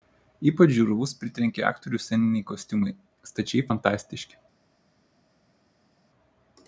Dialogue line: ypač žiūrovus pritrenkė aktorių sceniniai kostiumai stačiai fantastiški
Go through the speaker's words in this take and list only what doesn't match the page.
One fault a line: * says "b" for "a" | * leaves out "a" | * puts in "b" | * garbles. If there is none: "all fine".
all fine